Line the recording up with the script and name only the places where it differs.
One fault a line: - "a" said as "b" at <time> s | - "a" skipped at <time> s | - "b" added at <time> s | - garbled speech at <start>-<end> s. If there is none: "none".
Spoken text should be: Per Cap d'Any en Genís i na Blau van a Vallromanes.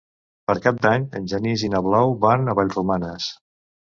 none